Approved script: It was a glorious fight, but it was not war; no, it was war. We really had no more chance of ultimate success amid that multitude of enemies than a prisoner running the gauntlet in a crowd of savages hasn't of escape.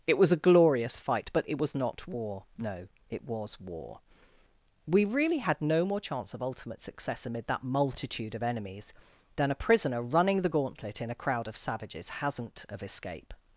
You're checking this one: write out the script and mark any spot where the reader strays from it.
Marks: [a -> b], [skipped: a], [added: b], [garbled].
It was a glorious fight, but it was not war; no, it was war. We really had no more chance of ultimate success amid that multitude of enemies than a prisoner running the gauntlet in a crowd of savages hasn't of escape.